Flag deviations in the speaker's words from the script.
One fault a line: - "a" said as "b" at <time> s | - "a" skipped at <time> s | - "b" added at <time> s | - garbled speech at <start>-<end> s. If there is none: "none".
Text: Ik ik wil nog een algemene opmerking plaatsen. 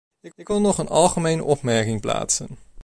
none